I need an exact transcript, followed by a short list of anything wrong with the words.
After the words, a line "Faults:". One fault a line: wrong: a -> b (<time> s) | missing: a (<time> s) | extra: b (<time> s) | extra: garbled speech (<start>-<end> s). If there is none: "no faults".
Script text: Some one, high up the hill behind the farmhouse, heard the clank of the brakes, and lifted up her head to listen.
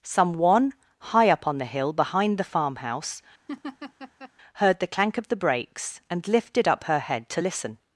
Some one, high up on the hill behind the farmhouse, heard the clank of the brakes, and lifted up her head to listen.
Faults:
extra: on (1.4 s)